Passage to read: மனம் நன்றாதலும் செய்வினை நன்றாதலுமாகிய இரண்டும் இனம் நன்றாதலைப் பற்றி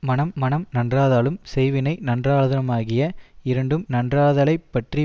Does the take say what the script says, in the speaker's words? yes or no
no